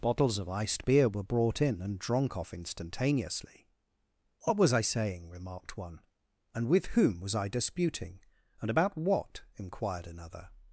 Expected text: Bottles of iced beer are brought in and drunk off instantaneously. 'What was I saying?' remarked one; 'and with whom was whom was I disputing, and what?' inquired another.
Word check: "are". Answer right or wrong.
wrong